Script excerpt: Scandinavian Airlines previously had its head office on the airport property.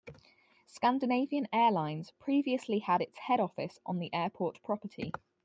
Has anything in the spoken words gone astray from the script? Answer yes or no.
no